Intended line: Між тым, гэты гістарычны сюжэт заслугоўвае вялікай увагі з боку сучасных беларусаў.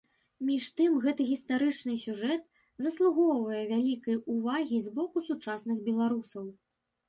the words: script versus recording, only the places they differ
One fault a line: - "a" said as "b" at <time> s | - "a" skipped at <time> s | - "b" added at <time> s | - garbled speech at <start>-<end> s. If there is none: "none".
none